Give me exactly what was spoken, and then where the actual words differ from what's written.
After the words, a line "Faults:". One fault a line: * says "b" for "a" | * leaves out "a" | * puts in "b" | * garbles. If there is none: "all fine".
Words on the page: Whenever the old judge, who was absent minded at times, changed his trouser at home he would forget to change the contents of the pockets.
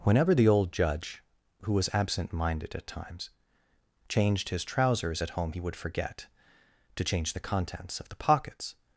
Whenever the old judge, who was absent minded at times, changed his trousers at home he would forget to change the contents of the pockets.
Faults:
* says "trousers" for "trouser"